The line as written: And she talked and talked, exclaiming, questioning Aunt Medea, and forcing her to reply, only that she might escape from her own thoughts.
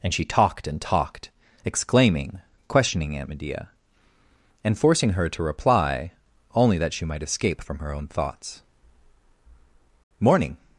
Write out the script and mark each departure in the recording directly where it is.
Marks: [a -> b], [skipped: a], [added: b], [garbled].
And she talked and talked, exclaiming, questioning Aunt Medea, and forcing her to reply, only that she might escape from her own thoughts. [added: Morning]